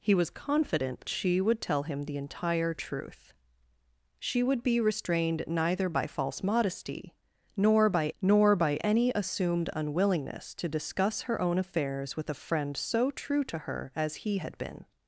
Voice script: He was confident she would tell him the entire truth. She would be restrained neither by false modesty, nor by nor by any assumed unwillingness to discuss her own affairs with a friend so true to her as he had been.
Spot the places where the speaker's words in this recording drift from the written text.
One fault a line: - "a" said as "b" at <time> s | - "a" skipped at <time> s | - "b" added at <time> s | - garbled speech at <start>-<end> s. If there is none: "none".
none